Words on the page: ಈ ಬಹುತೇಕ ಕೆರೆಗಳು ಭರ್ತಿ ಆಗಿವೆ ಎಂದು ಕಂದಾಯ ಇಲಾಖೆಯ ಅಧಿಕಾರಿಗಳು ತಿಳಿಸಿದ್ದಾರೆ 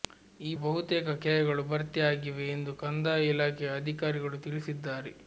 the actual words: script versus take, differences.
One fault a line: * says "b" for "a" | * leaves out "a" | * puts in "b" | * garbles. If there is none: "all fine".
all fine